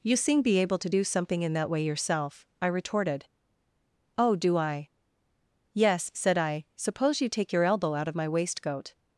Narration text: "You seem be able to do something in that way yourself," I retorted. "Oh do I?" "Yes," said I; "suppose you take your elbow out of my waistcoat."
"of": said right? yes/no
yes